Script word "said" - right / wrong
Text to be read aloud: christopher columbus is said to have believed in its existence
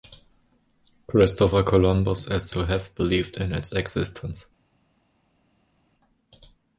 wrong